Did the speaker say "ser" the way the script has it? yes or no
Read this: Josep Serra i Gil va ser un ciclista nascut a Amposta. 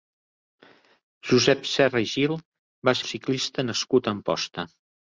no